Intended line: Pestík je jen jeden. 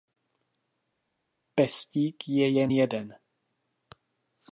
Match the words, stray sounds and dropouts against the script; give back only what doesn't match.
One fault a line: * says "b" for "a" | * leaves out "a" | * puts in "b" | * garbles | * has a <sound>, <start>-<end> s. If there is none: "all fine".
all fine